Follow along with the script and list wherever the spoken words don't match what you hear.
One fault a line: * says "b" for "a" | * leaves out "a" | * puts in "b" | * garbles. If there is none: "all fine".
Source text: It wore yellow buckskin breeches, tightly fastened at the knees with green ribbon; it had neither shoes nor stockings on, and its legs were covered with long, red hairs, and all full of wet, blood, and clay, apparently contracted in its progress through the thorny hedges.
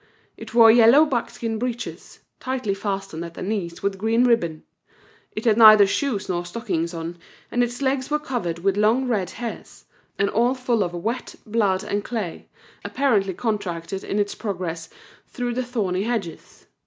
all fine